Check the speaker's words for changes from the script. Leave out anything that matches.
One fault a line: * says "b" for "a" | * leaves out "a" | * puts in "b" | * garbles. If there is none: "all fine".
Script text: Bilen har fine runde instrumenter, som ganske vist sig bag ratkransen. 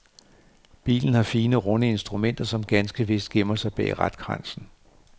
* puts in "gemmer"